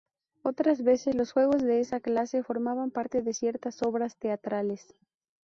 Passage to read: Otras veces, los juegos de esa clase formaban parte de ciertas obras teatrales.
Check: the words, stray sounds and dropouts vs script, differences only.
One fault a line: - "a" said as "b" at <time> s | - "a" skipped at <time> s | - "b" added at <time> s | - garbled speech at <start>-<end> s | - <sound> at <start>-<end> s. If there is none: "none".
none